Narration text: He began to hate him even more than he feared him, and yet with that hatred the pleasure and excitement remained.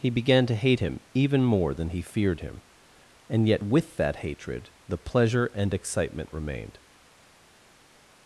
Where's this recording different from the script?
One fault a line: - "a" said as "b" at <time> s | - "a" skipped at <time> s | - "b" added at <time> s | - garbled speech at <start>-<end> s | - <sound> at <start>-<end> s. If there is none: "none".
none